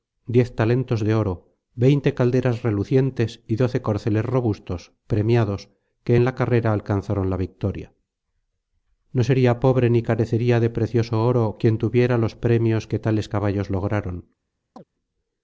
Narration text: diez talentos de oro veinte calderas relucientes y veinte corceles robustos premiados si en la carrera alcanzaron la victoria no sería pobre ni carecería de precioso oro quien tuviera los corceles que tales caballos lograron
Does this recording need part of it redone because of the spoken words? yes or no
yes